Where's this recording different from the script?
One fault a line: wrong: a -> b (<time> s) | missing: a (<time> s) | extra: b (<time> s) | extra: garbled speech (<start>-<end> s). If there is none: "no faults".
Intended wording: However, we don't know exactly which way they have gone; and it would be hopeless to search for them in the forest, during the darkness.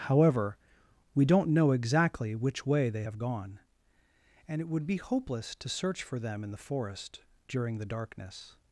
no faults